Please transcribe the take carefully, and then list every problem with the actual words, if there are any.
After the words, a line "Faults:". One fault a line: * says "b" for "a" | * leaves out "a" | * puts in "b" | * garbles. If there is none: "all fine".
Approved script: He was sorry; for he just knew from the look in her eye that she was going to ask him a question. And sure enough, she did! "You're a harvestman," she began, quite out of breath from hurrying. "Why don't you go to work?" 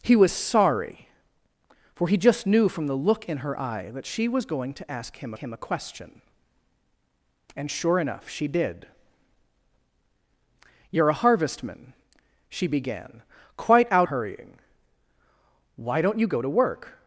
He was sorry; for he just knew from the look in her eye that she was going to ask him him a question. And sure enough, she did! "You're a harvestman," she began, quite out hurrying. "Why don't you go to work?"
Faults:
* puts in "him"
* leaves out "of breath from"